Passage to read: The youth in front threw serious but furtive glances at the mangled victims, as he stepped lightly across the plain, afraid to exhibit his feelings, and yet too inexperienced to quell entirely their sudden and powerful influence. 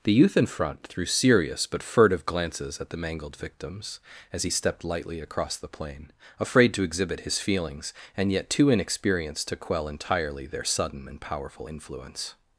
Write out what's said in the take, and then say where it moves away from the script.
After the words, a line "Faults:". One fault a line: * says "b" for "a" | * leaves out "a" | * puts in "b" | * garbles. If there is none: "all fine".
The youth in front threw serious but furtive glances at the mangled victims, as he stepped lightly across the plain, afraid to exhibit his feelings, and yet too inexperienced to quell entirely their sudden and powerful influence.
Faults:
all fine